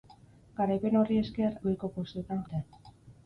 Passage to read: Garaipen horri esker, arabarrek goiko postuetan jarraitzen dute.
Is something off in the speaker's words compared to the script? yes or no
yes